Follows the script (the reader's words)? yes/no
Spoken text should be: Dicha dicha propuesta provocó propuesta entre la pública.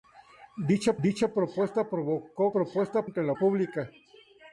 yes